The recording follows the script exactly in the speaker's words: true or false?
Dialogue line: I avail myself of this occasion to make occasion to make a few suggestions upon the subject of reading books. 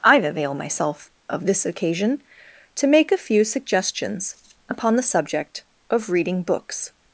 false